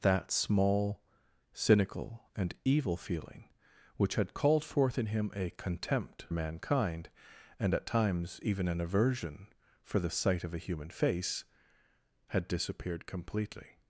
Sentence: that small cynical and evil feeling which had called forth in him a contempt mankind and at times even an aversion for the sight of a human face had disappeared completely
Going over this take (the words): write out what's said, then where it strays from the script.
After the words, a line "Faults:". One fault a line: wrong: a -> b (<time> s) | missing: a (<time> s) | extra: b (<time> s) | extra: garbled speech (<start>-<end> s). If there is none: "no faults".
that small cynical and evil feeling which had called forth in him a contempt mankind and at times even an aversion for the sight of a human face had disappeared completely
Faults:
no faults